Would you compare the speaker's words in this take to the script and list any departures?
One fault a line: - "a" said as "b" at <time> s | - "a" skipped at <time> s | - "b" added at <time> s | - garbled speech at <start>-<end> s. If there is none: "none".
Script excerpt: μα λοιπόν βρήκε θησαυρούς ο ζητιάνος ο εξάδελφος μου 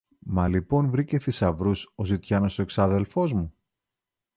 none